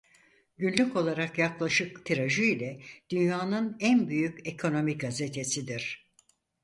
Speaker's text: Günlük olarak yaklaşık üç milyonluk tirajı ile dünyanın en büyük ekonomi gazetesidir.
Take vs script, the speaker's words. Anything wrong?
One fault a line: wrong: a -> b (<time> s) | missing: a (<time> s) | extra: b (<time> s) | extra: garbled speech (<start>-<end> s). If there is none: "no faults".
missing: üç milyonluk (2.0 s)